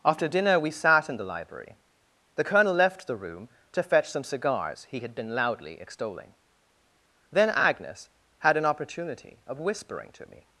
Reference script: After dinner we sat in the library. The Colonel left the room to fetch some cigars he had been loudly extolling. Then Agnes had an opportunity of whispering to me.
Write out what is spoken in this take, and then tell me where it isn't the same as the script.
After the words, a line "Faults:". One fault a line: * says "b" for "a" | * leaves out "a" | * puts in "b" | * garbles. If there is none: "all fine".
After dinner we sat in the library. The Colonel left the room to fetch some cigars he had been loudly extolling. Then Agnes had an opportunity of whispering to me.
Faults:
all fine